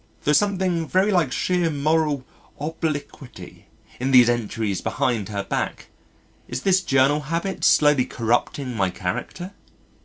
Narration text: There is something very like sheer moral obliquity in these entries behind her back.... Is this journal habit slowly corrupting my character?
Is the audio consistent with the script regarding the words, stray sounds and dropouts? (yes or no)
yes